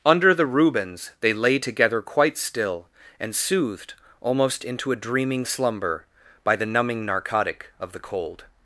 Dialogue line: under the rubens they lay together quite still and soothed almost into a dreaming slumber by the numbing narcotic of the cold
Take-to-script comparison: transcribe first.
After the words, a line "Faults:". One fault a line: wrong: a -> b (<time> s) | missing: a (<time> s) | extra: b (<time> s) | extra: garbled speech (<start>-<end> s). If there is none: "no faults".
under the rubens they lay together quite still and soothed almost into a dreaming slumber by the numbing narcotic of the cold
Faults:
no faults